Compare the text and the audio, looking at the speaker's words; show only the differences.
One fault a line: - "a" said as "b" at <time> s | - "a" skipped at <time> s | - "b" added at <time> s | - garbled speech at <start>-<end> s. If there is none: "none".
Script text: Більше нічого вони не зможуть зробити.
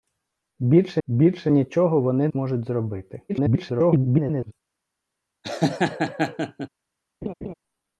- "більше" added at 1.1 s
- "не" skipped at 2.3 s
- garbled speech at 3.3-4.5 s